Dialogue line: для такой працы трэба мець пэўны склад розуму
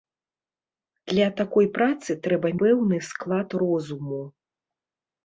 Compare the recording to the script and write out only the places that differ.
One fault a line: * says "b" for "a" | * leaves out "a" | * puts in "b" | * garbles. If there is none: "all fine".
* leaves out "мець"